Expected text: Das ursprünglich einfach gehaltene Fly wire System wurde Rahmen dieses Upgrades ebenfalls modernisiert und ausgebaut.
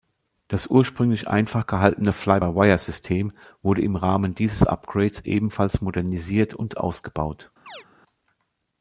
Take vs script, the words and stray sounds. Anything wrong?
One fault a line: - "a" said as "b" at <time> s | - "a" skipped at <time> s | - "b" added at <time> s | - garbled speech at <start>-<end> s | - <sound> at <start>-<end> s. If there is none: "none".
- "by" added at 2.3 s
- "im" added at 3.8 s
- chirp at 7.7-7.9 s